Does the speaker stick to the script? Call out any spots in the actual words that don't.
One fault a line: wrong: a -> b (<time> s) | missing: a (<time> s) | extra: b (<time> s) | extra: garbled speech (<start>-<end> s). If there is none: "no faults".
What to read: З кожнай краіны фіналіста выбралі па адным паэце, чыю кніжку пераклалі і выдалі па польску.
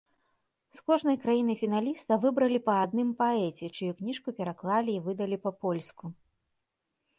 no faults